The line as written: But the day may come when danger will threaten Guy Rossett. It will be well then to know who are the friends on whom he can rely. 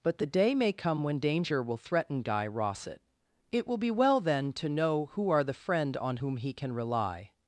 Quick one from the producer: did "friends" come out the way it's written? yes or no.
no